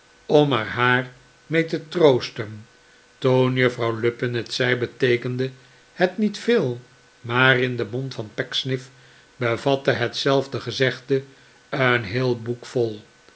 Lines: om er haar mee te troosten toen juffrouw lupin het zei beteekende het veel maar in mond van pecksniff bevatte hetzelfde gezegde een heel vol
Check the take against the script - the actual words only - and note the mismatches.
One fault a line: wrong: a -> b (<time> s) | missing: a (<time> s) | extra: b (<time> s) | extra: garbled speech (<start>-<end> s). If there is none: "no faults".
extra: niet (6.2 s)
extra: den (7.8 s)
extra: boek (12.4 s)